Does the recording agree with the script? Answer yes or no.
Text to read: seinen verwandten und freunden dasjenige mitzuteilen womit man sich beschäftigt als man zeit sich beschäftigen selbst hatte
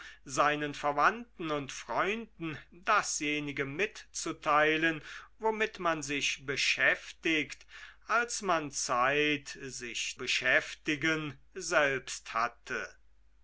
yes